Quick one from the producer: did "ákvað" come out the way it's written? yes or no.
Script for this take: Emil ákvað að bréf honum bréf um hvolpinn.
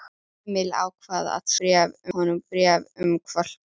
yes